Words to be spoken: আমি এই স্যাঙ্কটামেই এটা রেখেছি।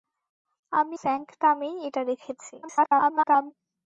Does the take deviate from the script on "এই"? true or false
true